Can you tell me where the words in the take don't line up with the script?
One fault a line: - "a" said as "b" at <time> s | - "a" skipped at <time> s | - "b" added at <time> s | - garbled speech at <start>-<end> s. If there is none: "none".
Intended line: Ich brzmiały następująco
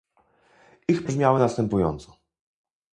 none